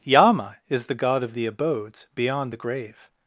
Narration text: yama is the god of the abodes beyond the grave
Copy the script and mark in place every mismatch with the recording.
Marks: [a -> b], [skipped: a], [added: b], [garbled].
yama is the god of the abodes beyond the grave